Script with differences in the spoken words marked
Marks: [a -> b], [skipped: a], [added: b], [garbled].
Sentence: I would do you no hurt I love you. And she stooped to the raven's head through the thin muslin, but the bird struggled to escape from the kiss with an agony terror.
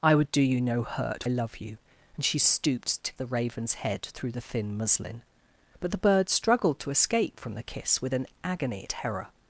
I would do you no hurt I love you. And she stooped to the raven's head through the thin muslin, but the bird struggled to escape from the kiss with an agony terror.